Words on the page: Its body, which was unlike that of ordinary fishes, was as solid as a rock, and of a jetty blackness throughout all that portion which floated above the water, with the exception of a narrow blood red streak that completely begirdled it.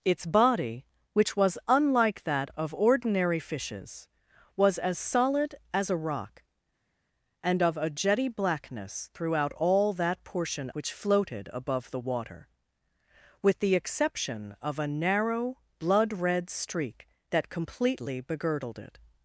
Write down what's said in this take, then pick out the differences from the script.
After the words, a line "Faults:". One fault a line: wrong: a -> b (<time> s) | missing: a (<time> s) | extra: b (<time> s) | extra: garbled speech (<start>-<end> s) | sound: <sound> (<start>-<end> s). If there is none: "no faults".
Its body, which was unlike that of ordinary fishes, was as solid as a rock, and of a jetty blackness throughout all that portion which floated above the water, with the exception of a narrow blood red streak that completely begirdled it.
Faults:
no faults